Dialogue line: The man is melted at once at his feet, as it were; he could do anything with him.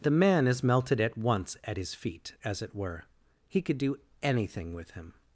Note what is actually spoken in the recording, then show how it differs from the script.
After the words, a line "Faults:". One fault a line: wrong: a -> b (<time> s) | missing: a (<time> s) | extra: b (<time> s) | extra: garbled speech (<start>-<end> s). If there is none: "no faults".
The man is melted at once at his feet, as it were; he could do anything with him.
Faults:
no faults